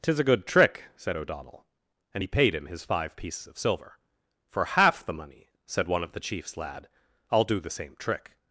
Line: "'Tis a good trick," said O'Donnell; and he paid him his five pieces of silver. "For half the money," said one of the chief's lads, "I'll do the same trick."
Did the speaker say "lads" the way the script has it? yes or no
no